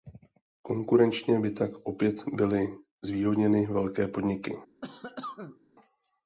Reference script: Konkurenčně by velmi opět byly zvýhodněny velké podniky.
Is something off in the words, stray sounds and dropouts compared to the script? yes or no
yes